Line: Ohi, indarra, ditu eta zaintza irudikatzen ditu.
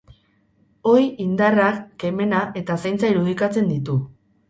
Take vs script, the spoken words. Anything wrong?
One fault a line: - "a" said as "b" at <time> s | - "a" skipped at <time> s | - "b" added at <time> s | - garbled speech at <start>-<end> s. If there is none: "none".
- "ditu" said as "kemena" at 2.0 s